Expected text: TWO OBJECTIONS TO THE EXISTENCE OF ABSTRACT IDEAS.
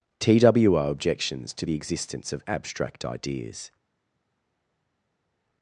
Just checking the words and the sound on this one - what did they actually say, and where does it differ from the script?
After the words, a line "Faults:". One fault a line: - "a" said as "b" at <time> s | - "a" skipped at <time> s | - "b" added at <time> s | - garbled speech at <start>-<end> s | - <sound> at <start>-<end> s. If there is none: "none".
TWO OBJECTIONS TO THE EXISTENCE OF ABSTRACT IDEAS.
Faults:
none